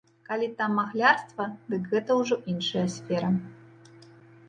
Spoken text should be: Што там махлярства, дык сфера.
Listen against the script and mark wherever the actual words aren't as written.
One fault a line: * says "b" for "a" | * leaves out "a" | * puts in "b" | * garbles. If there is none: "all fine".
* says "Калі" for "Што"
* puts in "гэта ўжо іншая"